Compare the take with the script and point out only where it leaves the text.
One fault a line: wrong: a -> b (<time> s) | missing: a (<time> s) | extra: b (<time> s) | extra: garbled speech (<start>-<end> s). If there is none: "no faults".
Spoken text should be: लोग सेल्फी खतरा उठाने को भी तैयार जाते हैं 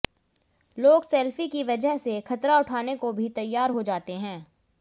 extra: की वजह से (1.5 s)
extra: हो (3.7 s)